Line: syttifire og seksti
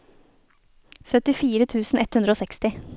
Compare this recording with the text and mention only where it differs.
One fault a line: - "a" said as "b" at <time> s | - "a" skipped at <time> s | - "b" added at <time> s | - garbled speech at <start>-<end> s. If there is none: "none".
- "tusen ett hundre" added at 1.6 s